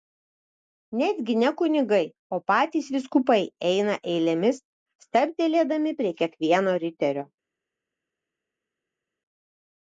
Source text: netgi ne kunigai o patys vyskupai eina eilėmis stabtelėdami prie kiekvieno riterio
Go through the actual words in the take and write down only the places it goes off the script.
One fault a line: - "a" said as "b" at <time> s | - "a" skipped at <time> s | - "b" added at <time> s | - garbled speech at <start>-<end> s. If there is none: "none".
none